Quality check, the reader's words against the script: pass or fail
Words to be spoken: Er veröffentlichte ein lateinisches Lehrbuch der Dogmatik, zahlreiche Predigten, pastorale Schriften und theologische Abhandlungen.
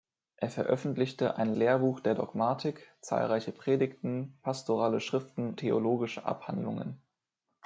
fail